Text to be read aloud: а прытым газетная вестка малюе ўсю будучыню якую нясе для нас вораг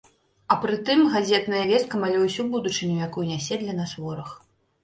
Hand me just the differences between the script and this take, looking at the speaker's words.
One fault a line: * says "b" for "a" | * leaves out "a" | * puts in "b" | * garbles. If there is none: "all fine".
all fine